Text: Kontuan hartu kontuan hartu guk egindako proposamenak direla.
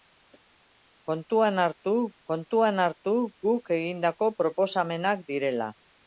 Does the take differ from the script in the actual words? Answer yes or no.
no